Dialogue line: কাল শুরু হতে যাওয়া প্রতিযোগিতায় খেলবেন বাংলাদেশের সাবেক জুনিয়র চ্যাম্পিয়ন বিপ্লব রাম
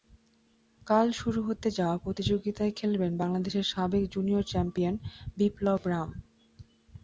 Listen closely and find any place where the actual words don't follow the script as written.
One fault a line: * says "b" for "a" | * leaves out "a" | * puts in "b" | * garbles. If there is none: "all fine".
all fine